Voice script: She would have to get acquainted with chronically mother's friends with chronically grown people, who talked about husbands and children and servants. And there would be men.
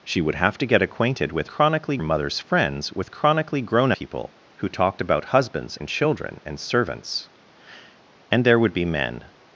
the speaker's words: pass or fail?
pass